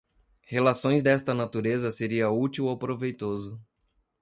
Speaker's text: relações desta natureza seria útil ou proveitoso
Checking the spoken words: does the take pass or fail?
pass